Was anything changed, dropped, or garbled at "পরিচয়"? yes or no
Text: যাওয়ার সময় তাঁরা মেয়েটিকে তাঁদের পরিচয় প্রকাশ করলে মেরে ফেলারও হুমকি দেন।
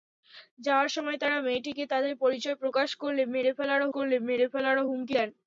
no